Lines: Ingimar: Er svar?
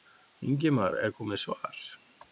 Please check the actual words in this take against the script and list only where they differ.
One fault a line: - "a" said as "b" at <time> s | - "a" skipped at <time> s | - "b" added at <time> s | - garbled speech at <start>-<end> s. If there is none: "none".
- "komið" added at 1.2 s